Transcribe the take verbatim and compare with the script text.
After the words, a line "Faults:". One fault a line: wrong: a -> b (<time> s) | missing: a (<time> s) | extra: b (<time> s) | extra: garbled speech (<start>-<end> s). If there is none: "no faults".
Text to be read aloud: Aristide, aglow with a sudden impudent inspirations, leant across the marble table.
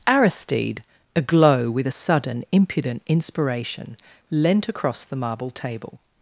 Aristide, aglow with a sudden impudent inspiration, leant across the marble table.
Faults:
wrong: inspirations -> inspiration (3.1 s)